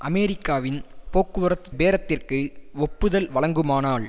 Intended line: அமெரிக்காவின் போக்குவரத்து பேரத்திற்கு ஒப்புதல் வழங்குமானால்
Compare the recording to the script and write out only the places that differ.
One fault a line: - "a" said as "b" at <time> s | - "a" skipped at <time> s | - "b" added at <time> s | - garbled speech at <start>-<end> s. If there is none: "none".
none